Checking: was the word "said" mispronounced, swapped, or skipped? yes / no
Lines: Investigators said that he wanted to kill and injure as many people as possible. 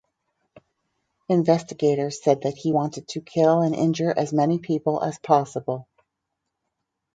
no